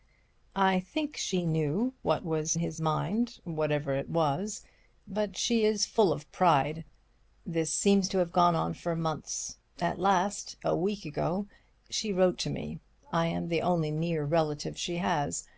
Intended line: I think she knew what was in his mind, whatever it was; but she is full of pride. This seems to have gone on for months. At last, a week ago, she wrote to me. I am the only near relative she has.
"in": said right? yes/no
no